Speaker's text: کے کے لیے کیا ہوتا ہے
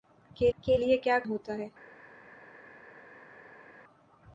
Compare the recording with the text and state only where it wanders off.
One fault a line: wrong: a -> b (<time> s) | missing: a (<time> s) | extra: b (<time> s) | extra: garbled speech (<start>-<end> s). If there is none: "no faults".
no faults